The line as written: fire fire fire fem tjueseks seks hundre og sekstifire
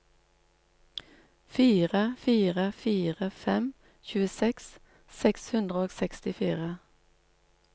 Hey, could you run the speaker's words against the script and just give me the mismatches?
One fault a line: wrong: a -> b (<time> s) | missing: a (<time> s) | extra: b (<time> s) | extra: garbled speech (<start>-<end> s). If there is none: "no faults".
no faults